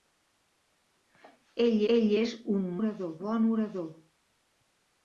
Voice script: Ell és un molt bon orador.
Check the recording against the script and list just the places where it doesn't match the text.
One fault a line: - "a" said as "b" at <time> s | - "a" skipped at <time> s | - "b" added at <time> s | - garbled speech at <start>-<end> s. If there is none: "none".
- "ell" added at 1.9 s
- "molt" said as "orador" at 2.8 s